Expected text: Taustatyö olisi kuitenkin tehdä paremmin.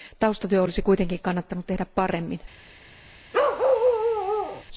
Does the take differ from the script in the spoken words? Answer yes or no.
yes